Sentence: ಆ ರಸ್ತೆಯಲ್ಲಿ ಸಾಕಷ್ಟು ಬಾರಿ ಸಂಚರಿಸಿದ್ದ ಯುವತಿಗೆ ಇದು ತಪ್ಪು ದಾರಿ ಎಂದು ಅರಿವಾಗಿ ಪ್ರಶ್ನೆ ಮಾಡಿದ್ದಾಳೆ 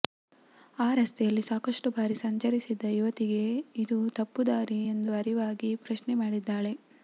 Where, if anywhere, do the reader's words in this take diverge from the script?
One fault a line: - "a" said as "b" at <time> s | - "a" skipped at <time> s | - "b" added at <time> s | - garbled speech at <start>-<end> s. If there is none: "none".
none